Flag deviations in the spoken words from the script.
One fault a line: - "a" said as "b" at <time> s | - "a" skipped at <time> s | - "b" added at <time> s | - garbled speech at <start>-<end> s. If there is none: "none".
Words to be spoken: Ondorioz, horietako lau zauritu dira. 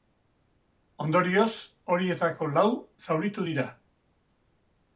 none